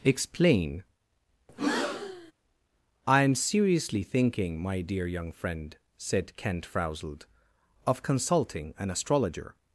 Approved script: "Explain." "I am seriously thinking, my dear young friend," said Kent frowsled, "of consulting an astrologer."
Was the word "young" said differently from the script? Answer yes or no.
no